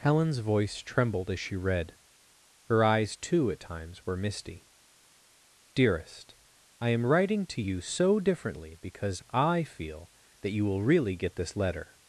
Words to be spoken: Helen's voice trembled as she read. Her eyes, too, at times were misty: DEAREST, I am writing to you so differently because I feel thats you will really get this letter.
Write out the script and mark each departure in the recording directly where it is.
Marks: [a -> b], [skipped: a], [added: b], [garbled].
Helen's voice trembled as she read. Her eyes, too, at times were misty: DEAREST, I am writing to you so differently because I feel [thats -> that] you will really get this letter.